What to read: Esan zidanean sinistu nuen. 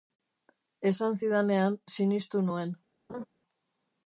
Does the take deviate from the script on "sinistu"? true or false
false